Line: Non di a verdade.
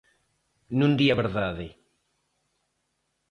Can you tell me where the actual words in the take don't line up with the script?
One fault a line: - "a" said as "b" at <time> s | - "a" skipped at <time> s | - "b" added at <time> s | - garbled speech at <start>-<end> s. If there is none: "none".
none